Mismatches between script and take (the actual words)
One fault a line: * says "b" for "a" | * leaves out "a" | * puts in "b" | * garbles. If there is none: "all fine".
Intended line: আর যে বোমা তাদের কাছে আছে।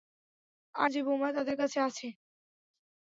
all fine